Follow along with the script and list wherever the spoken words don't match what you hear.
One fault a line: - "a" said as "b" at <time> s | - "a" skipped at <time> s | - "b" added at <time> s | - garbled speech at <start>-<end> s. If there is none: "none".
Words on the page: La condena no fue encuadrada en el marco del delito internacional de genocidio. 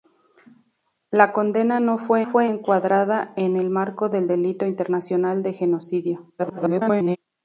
- "fue" added at 2.2 s
- garbled speech at 6.4-7.2 s